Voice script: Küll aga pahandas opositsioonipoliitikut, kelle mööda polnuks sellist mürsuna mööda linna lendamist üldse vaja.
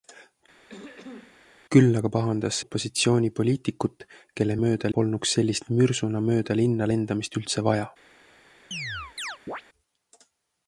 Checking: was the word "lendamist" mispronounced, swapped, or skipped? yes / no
no